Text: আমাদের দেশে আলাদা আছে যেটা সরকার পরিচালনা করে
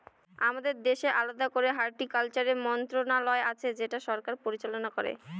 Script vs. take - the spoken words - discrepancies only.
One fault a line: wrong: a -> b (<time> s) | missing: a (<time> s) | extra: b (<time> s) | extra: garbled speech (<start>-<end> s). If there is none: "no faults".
extra: করে হর্টিকালচারের মন্ত্রণালয় (1.5 s)